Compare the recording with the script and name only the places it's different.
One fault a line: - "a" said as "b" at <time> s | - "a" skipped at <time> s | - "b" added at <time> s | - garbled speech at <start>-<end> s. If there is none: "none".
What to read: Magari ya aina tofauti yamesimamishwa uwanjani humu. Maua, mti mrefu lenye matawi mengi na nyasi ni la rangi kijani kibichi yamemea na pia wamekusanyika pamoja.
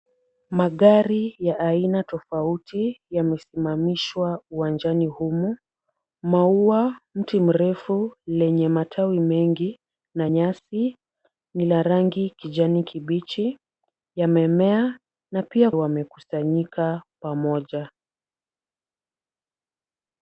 none